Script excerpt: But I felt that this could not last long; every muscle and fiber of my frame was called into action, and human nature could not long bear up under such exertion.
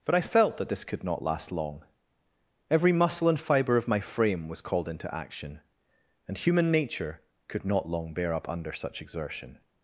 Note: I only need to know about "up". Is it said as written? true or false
true